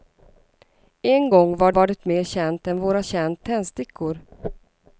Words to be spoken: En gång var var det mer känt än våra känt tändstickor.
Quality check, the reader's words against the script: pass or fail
pass